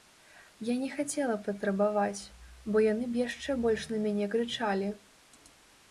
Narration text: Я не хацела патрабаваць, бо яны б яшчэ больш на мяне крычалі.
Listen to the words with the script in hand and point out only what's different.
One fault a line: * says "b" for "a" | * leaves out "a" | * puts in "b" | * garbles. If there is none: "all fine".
all fine